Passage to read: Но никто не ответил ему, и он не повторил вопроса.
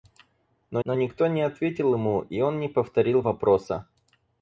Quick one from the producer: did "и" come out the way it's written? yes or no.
yes